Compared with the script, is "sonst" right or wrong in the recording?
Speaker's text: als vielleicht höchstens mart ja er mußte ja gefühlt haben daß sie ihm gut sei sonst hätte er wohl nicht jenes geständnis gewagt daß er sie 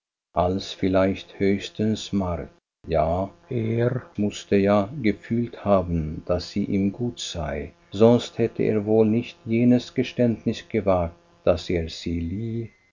right